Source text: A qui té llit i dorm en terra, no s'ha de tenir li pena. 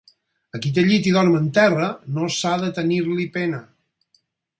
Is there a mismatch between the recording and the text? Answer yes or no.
no